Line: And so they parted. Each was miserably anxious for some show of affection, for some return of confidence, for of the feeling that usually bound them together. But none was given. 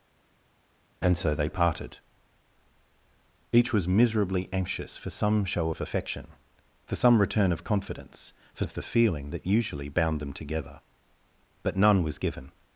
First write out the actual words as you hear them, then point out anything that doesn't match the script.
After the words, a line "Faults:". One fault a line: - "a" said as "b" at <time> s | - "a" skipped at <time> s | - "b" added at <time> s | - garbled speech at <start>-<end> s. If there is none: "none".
And so they parted. Each was miserably anxious for some show of affection, for some return of confidence, for of the feeling that usually bound them together. But none was given.
Faults:
none